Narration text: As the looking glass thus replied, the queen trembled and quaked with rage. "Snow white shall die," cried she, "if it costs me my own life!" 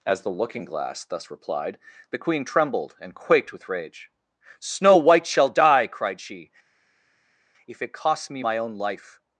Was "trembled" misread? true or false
false